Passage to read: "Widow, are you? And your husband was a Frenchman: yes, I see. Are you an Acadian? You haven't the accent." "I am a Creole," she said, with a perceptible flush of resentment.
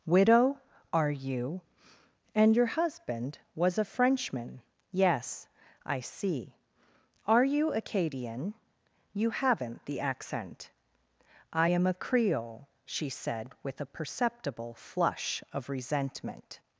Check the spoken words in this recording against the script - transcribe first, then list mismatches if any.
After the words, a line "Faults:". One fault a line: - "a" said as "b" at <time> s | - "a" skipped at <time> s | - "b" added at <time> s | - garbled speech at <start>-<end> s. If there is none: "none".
"Widow, are you? And your husband was a Frenchman: yes, I see. Are you Acadian? You haven't the accent." "I am a Creole," she said, with a perceptible flush of resentment.
Faults:
- "an" skipped at 7.7 s